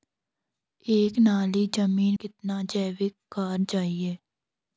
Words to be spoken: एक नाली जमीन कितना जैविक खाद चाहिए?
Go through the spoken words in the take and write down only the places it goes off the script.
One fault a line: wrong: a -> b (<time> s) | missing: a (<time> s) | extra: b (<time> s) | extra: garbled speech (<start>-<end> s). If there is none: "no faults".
no faults